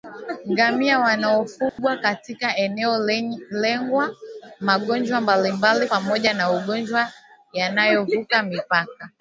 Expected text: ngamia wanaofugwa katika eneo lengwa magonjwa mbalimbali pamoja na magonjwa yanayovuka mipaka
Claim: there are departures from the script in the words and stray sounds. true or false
true